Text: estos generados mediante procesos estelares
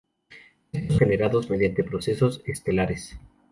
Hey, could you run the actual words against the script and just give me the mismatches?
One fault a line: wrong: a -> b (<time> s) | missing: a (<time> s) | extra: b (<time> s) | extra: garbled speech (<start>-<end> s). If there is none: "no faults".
no faults